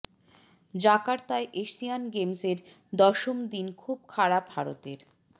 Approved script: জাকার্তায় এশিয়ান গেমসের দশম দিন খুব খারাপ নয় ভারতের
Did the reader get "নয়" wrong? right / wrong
wrong